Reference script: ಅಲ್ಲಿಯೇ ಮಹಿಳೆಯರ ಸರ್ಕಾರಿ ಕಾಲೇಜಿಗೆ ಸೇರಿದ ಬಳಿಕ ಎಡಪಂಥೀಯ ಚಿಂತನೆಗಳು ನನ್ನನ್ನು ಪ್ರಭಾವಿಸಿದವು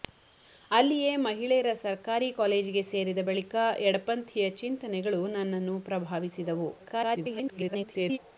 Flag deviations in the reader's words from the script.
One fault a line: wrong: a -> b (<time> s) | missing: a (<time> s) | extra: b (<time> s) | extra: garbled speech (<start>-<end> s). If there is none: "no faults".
extra: garbled speech (6.8-8.2 s)